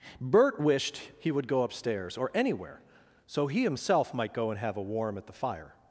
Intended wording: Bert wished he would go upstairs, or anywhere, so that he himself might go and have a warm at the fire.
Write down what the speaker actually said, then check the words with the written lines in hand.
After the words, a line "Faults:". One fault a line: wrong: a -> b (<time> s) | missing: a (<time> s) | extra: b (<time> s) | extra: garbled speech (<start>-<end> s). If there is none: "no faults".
Bert wished he would go upstairs, or anywhere, so he himself might go and have a warm at the fire.
Faults:
missing: that (3.5 s)